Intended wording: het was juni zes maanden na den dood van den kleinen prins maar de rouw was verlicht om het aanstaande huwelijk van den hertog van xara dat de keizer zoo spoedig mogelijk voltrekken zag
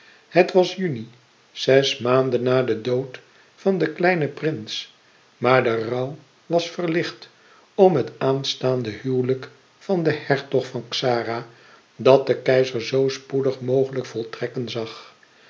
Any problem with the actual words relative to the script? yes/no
no